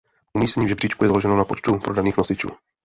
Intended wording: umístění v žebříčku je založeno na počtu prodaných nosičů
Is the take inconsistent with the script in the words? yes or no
no